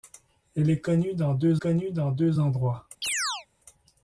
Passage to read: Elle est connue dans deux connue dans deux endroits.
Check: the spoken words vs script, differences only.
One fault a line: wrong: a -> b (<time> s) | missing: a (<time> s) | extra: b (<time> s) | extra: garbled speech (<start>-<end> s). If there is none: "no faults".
no faults